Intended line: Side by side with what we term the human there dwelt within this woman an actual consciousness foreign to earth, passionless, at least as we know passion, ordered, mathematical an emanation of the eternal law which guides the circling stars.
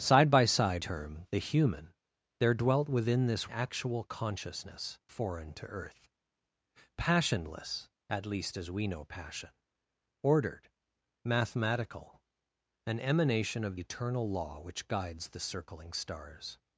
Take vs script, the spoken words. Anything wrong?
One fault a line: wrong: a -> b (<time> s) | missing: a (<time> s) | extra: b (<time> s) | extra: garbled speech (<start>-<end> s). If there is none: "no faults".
missing: with what we (0.8 s)
missing: woman an (3.5 s)
missing: the (13.8 s)